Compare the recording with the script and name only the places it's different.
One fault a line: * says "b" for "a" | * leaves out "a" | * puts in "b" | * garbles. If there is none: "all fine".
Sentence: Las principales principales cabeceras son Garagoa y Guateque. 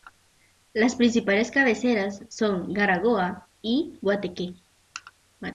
* leaves out "principales"